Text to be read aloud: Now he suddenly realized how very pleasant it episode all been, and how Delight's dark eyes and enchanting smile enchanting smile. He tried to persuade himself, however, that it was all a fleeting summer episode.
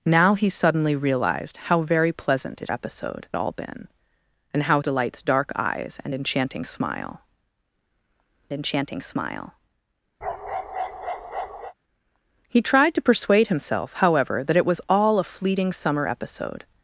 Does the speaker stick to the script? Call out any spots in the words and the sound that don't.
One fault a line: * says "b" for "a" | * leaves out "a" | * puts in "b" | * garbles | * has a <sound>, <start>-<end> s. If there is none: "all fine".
* has a bark, 10.2-11.7 s